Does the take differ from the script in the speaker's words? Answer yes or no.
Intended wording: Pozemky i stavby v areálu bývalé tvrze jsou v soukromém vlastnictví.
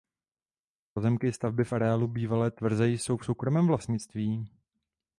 no